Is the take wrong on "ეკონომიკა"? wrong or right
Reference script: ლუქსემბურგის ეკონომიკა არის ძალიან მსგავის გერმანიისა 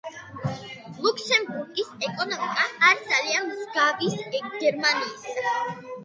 right